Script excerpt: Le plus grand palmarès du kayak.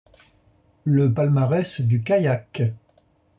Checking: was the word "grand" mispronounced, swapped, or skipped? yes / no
yes